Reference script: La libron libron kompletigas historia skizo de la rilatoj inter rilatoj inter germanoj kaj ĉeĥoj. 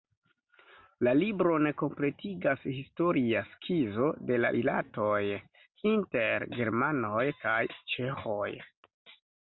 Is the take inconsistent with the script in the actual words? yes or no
yes